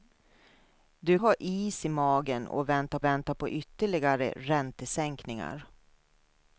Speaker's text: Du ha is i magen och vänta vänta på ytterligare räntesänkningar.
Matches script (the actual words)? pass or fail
pass